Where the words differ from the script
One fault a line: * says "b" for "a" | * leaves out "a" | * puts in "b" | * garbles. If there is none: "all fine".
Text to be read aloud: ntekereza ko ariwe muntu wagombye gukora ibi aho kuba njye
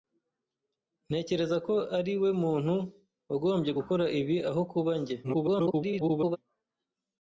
* garbles